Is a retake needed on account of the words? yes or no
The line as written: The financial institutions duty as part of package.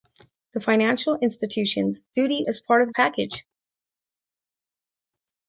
no